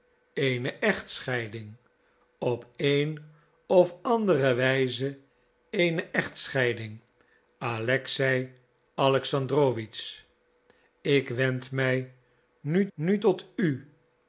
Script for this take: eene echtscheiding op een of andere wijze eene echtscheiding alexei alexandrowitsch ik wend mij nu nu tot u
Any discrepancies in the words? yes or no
no